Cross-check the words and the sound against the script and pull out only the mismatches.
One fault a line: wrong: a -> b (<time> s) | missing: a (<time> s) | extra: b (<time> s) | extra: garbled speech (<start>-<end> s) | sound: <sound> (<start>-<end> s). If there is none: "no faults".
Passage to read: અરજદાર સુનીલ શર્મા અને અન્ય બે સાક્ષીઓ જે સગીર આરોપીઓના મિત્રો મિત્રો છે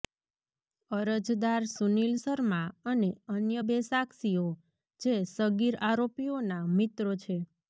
missing: મિત્રો (7.1 s)